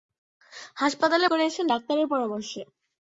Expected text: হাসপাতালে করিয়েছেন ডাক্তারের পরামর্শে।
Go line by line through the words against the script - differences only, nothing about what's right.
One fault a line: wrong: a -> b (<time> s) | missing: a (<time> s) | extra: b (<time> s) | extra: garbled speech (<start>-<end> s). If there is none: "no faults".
no faults